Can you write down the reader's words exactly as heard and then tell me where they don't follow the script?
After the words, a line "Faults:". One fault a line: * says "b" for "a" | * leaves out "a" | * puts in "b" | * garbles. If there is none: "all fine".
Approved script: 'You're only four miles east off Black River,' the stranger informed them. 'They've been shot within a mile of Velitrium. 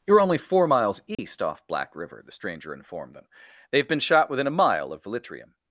'You're only four miles east off Black River,' the stranger informed them. 'They've been shot within a mile of Velitrium.
Faults:
all fine